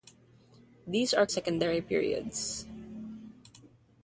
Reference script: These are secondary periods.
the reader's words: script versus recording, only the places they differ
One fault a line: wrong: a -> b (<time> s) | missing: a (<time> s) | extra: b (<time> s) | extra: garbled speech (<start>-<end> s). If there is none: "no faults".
no faults